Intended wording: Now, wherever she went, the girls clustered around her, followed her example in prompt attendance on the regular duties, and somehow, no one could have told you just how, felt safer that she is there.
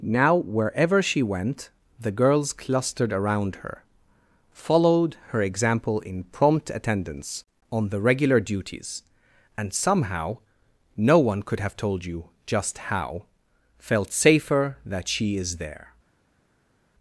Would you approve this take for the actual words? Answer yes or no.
yes